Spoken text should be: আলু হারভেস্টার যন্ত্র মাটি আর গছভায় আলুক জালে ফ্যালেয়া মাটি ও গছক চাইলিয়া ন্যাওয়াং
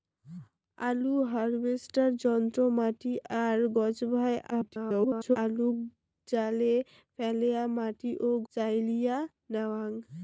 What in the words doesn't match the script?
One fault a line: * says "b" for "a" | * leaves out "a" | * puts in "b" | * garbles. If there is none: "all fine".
* garbles
* leaves out "গছক"